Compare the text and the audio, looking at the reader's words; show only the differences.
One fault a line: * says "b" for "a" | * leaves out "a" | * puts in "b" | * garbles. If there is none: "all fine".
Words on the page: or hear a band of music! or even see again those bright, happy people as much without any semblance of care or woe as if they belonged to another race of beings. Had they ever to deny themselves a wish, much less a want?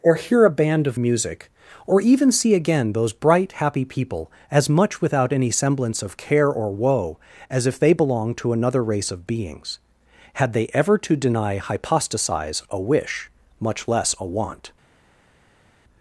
* says "hypostasize" for "themselves"